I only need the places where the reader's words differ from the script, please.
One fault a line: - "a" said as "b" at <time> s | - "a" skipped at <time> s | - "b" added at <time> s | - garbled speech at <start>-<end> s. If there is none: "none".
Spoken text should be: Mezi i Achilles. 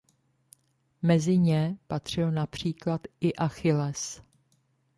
- "ně patřil například" added at 1.4 s